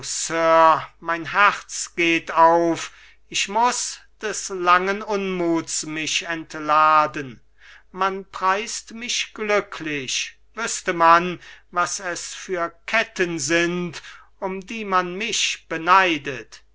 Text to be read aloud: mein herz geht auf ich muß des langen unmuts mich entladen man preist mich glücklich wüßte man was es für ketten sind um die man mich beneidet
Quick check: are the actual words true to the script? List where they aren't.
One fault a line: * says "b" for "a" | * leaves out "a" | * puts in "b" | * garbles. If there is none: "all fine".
all fine